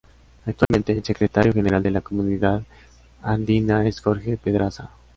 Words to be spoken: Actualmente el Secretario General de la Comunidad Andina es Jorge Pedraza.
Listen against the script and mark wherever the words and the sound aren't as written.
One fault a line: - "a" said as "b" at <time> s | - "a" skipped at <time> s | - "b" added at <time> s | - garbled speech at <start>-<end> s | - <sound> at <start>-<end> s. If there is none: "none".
- dropout at 0.6-0.7 s